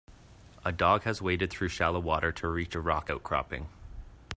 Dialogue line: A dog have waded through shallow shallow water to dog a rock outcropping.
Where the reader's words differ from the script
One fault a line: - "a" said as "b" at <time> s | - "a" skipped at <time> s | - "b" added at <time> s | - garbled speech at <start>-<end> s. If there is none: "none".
- "have" said as "has" at 1.0 s
- "shallow" skipped at 2.0 s
- "dog" said as "reach" at 2.5 s